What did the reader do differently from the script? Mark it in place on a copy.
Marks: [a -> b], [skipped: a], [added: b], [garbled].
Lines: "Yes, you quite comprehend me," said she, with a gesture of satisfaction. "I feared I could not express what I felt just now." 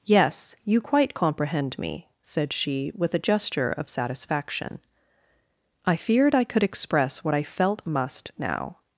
"Yes, you quite comprehend me," said she, with a gesture of satisfaction. "I feared I could [skipped: not] express what I felt [just -> must] now."